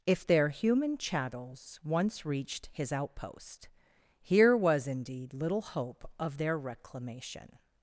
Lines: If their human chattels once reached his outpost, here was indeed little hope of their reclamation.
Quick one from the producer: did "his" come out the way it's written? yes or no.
yes